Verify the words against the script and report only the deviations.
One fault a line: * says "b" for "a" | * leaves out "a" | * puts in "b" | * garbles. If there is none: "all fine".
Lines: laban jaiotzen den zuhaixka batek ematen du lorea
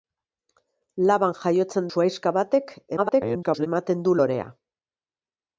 * leaves out "den"
* garbles